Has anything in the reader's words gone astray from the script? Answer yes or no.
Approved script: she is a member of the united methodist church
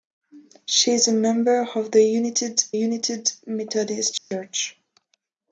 yes